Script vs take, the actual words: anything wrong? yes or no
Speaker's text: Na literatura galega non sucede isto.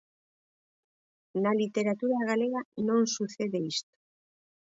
no